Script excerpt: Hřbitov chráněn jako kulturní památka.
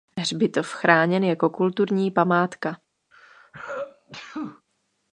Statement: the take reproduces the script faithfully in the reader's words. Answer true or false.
true